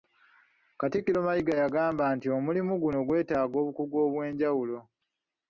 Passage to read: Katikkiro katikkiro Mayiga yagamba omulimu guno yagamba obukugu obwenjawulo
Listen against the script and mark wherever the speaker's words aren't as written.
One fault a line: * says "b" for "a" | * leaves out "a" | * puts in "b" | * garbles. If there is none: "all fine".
* leaves out "katikkiro"
* puts in "nti"
* says "gwetaaga" for "yagamba"